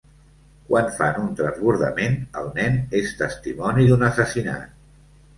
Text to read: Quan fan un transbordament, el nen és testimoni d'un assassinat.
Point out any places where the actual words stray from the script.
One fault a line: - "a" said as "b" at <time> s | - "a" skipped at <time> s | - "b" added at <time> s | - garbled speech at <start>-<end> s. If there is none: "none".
none